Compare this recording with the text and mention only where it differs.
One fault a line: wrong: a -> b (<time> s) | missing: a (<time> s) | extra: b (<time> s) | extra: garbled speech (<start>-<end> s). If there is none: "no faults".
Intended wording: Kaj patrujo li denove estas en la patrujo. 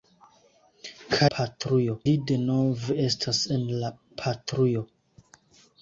no faults